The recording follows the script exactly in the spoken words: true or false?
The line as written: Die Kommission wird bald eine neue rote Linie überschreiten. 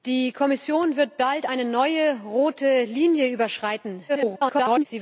false